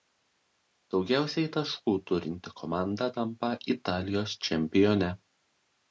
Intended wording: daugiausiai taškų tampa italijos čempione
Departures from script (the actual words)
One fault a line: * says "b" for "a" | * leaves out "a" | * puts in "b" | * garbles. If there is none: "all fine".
* puts in "turinti komanda"